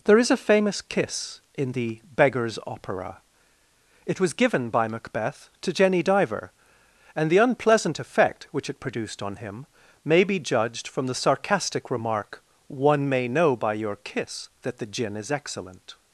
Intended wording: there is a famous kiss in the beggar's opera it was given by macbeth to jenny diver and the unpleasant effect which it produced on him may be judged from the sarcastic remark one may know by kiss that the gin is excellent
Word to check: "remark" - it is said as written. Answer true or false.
true